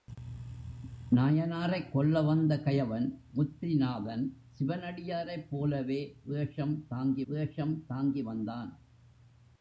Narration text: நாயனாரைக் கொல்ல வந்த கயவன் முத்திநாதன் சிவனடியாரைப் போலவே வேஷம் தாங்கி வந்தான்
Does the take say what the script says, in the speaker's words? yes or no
no